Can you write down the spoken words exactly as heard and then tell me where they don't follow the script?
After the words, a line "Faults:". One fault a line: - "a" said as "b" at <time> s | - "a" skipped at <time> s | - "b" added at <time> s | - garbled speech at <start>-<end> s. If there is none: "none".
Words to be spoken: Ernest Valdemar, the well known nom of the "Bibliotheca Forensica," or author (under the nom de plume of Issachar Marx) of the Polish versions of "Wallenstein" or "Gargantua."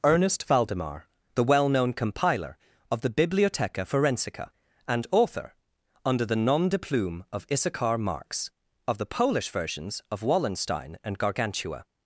Ernest Valdemar, the well known compiler of the "Bibliotheca Forensica," and author (under the nom de plume of Issachar Marx) of the Polish versions of "Wallenstein" and "Gargantua."
Faults:
- "nom" said as "compiler" at 1.9 s
- "or" said as "and" at 4.9 s
- "or" said as "and" at 11.0 s